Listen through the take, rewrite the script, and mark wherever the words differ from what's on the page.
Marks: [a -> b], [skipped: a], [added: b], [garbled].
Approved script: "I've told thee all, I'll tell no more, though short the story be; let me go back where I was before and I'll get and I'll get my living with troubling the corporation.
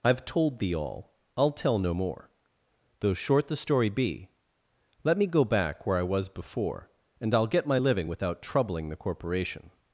"I've told thee all, I'll tell no more, though short the story be; let me go back where I was before and I'll get [skipped: and I'll get] my living [with -> without] troubling the corporation.